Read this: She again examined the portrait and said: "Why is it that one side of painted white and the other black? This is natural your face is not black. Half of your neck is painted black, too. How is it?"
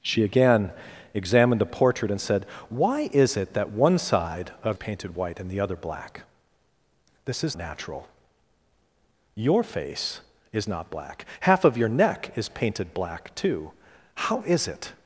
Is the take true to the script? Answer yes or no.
yes